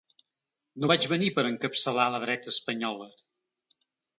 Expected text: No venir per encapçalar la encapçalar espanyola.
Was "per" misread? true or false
false